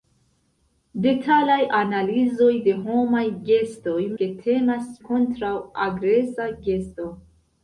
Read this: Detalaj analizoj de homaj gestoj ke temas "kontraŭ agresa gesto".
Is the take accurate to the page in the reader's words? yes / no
yes